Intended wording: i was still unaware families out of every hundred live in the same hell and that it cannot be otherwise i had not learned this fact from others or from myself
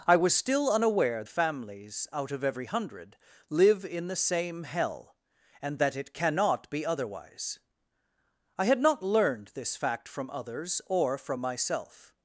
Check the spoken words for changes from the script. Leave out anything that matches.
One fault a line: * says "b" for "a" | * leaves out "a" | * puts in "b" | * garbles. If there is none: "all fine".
all fine